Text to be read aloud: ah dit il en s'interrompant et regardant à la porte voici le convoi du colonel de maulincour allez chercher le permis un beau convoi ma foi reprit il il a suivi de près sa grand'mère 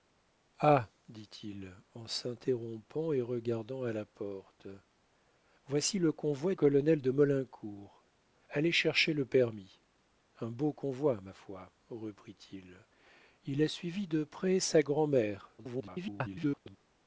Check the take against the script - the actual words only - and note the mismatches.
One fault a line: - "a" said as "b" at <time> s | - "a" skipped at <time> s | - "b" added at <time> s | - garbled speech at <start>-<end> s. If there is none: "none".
- "du" skipped at 6.5 s
- garbled speech at 15.6-16.8 s